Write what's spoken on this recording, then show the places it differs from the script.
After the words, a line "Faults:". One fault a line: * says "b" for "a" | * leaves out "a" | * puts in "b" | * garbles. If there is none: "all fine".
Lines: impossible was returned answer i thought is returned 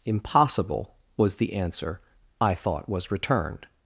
impossible was the answer i thought was returned
Faults:
* says "the" for "returned"
* says "was" for "is"